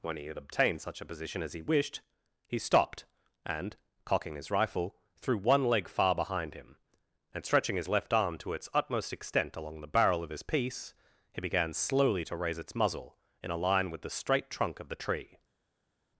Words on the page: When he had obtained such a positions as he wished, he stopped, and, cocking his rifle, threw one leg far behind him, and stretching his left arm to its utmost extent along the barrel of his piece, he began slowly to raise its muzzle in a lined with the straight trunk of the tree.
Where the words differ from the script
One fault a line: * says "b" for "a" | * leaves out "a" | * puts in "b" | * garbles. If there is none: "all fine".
* says "position" for "positions"
* says "line" for "lined"